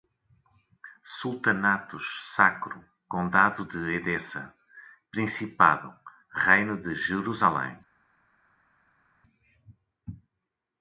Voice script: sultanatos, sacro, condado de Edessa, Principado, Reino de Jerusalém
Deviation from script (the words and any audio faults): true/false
false